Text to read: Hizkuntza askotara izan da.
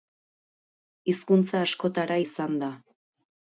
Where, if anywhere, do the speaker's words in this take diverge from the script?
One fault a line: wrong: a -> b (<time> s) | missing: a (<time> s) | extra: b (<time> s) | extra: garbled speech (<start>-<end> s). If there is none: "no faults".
no faults